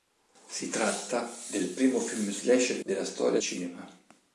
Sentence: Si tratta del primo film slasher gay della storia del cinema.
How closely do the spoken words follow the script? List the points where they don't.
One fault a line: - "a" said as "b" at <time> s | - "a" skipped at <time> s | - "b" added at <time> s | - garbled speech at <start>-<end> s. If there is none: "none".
- "gay" skipped at 2.8 s
- "del" skipped at 3.4 s